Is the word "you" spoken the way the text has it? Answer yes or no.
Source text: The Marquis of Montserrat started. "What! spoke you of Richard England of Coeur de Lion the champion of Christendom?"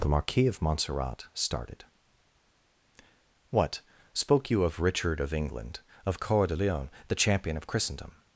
yes